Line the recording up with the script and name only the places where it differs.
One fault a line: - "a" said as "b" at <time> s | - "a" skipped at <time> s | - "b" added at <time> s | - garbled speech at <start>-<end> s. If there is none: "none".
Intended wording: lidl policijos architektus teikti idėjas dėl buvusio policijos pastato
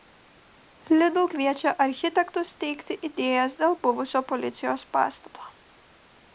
- "policijos" said as "kviečia" at 1.3 s